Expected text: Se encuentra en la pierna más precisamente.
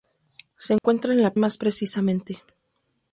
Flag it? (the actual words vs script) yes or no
yes